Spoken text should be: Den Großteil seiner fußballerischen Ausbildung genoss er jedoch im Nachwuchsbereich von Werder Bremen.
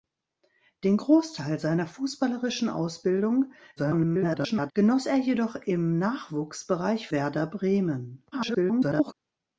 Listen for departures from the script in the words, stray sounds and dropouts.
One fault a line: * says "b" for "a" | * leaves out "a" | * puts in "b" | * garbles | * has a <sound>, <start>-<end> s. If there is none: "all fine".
* garbles
* leaves out "von"
* garbles